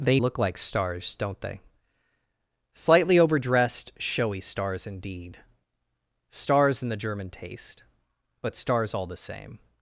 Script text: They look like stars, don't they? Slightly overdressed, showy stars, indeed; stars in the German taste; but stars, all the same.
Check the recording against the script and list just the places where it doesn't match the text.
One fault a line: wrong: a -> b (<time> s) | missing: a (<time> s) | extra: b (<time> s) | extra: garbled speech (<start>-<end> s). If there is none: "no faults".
no faults